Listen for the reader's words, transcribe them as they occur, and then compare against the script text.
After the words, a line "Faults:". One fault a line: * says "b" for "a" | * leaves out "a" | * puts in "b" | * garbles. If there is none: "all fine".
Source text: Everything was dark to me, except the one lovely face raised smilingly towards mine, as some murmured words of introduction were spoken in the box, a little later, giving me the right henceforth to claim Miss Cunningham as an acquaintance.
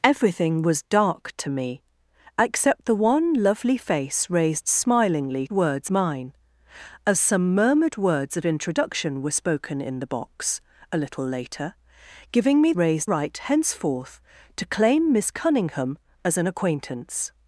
Everything was dark to me, except the one lovely face raised smilingly words mine, as some murmured words of introduction were spoken in the box, a little later, giving me raised right henceforth to claim Miss Cunningham as an acquaintance.
Faults:
* says "words" for "towards"
* says "raised" for "the"